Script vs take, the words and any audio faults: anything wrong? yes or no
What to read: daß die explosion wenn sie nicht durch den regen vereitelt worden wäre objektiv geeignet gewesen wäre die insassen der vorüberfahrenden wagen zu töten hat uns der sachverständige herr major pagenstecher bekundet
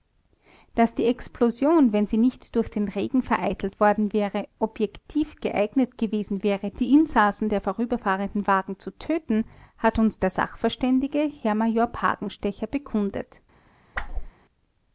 yes